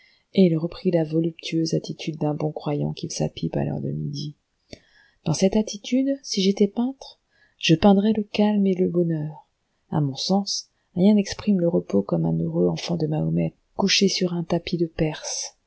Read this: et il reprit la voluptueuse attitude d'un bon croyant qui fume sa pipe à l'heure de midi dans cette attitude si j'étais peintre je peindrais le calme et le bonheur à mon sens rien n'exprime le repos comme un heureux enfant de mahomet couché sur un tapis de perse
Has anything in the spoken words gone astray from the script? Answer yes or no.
yes